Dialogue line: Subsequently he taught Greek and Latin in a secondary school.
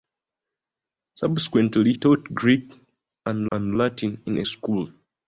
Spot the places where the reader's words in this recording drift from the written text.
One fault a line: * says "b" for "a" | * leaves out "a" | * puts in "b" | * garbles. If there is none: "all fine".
* leaves out "he"
* puts in "and"
* leaves out "secondary"